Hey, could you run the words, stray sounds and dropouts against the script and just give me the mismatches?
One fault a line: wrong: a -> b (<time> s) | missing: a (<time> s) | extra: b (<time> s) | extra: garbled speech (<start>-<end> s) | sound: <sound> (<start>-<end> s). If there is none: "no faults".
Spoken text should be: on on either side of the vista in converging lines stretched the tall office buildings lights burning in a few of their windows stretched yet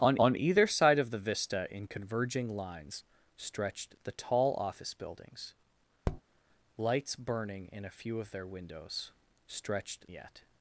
sound: tap (6.0-6.2 s)